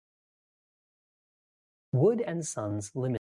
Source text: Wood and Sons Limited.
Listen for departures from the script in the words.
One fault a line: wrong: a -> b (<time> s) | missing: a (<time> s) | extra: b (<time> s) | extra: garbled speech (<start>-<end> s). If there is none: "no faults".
no faults